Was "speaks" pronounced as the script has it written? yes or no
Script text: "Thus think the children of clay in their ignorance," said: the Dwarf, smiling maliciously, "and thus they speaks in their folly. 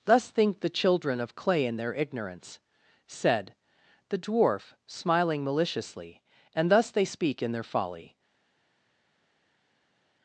no